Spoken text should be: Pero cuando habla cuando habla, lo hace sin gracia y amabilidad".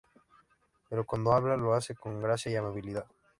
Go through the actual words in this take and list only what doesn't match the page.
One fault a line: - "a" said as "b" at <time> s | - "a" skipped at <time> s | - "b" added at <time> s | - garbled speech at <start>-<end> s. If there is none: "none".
- "cuando habla" skipped at 1.6 s
- "sin" said as "con" at 1.9 s